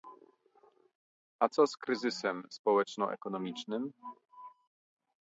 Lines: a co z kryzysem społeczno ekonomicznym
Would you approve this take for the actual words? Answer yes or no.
yes